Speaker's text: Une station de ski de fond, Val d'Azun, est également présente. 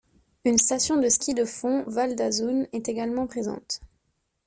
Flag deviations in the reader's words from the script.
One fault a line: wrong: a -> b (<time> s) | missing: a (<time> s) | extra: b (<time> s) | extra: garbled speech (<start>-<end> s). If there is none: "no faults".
no faults